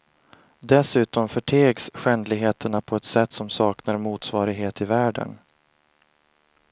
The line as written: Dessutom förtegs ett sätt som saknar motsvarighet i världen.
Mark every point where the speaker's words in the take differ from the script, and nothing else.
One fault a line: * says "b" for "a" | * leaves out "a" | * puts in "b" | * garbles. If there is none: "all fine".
* puts in "skändligheterna på"